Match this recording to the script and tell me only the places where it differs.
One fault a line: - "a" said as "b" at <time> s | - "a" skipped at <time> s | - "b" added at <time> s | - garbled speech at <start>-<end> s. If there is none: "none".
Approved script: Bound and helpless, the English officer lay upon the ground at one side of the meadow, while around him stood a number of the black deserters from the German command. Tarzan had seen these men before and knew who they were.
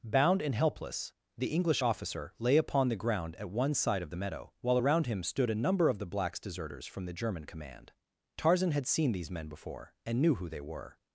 - "black" said as "blacks" at 6.1 s